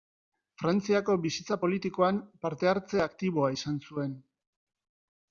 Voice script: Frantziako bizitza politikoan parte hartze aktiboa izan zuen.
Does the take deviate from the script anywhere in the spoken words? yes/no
no